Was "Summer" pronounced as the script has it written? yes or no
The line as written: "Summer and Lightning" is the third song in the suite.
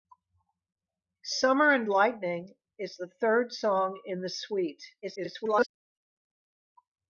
yes